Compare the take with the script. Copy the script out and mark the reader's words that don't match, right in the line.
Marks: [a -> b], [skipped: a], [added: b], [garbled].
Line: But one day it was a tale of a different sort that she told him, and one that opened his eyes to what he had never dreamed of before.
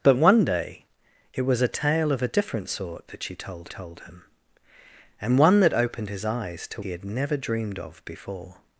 But one day it was a tale of a different sort that she told [added: told] him, and one that opened his eyes to [skipped: what] he had never dreamed of before.